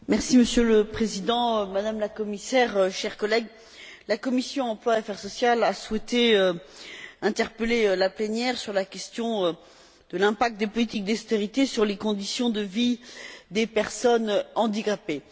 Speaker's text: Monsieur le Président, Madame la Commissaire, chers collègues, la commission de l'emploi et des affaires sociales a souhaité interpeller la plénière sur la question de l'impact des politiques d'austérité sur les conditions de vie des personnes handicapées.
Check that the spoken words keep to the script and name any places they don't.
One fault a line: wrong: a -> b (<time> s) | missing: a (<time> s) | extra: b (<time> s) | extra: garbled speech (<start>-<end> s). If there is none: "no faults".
no faults